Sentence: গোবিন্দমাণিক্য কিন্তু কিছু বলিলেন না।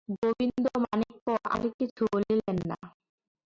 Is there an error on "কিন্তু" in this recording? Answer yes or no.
yes